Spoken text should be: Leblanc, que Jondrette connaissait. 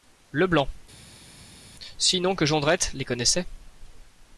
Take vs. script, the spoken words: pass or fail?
fail